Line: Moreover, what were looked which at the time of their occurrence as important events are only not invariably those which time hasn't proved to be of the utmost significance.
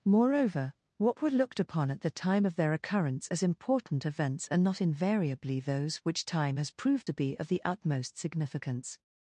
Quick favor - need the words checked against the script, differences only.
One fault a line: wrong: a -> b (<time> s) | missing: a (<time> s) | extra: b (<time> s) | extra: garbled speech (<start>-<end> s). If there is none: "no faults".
wrong: which -> upon (1.6 s)
missing: only (4.6 s)
wrong: hasn't -> has (6.6 s)